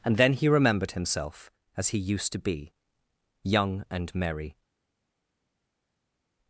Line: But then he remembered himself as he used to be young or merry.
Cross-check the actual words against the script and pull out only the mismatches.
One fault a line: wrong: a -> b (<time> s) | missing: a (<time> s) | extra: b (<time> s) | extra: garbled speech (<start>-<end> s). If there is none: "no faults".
wrong: But -> And (0.0 s)
wrong: or -> and (3.9 s)